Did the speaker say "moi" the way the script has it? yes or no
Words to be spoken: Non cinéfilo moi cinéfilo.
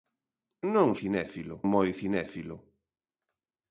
yes